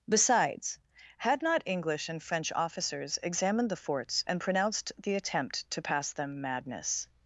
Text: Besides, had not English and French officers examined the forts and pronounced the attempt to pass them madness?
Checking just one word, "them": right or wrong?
right